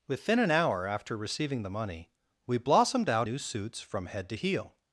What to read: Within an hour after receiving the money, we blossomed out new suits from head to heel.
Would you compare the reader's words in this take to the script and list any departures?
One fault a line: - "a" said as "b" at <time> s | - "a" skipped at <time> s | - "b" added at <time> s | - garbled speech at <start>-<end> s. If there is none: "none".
none